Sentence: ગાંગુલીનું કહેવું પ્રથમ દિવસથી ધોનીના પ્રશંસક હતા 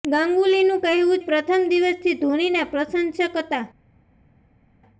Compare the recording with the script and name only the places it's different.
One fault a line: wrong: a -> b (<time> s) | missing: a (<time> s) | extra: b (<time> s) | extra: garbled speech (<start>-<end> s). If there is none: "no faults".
no faults